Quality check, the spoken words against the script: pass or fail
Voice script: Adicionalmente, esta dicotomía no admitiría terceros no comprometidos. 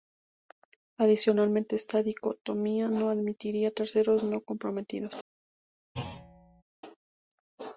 pass